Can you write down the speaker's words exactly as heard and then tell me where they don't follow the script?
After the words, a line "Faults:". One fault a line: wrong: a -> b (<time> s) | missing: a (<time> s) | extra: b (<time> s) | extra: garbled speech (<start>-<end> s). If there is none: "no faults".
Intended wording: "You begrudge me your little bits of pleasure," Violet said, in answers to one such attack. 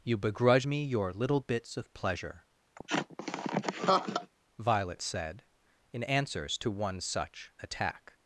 "You begrudge me your little bits of pleasure," Violet said, in answers to one such attack.
Faults:
no faults